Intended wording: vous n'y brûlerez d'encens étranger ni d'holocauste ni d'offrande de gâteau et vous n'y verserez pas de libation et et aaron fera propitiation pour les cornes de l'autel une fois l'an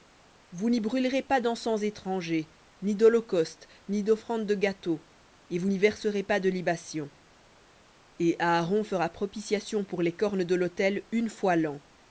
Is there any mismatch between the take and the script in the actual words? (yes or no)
yes